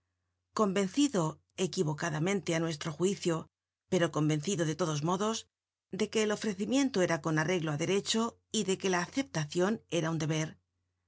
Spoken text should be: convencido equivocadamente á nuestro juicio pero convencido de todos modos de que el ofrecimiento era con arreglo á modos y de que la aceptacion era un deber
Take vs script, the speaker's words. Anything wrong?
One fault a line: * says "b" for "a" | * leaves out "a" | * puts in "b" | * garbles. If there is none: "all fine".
* says "derecho" for "modos"